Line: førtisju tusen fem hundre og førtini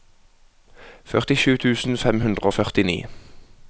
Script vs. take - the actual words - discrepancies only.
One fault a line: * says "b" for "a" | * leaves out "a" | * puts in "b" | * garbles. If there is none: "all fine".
all fine